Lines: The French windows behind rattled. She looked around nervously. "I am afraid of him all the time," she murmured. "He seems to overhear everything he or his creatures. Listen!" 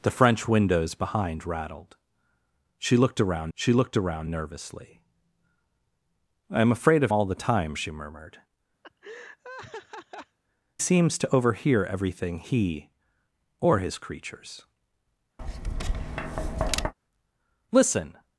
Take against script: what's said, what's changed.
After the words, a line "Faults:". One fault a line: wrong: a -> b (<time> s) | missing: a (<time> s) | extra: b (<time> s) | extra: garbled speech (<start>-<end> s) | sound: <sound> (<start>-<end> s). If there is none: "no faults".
The French windows behind rattled. She looked around she looked around nervously. "I am afraid of all the time," she murmured. "Seems to overhear everything he or his creatures. Listen!"
Faults:
extra: she looked around (3.5 s)
missing: him (7.1 s)
missing: He (8.4 s)
sound: laugh (8.8-10.4 s)
sound: tap (15.4-16.9 s)